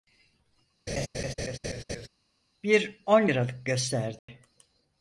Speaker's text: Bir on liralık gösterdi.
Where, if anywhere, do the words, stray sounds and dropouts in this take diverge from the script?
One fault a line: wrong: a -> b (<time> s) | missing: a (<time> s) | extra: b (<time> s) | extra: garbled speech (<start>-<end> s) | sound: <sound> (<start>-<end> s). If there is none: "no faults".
sound: laugh (0.9-2.1 s)
sound: dropout (4.2-4.3 s)